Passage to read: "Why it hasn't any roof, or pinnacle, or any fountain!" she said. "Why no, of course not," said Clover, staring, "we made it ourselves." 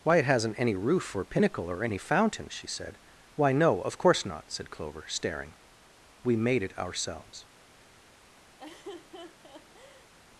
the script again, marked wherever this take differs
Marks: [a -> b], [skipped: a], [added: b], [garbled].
"Why it hasn't any roof, or pinnacle, or any fountain!" she said. "Why no, of course not," said Clover, staring, "we made it ourselves."